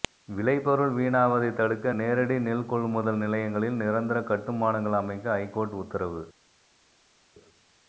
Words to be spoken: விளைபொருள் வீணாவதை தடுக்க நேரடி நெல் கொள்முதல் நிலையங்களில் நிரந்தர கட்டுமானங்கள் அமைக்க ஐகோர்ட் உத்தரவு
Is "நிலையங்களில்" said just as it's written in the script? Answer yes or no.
yes